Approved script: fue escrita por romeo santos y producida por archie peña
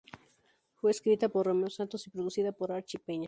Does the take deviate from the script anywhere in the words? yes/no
no